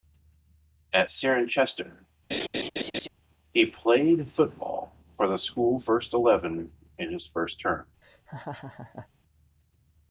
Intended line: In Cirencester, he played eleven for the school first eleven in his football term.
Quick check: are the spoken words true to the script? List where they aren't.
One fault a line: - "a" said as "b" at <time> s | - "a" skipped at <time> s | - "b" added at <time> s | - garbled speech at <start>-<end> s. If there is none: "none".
- "In" said as "At" at 0.9 s
- "eleven" said as "football" at 4.3 s
- "football" said as "first" at 7.3 s